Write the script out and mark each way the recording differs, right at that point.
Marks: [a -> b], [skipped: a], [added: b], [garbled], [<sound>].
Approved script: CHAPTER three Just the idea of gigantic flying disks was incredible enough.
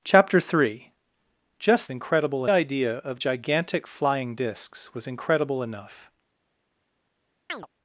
CHAPTER three Just [the -> incredible] idea of gigantic flying disks was incredible enough. [chirp]